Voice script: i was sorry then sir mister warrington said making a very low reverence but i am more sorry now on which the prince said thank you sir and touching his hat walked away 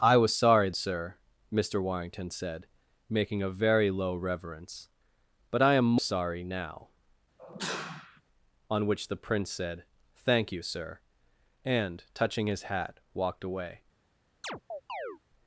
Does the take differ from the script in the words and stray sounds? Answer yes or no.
yes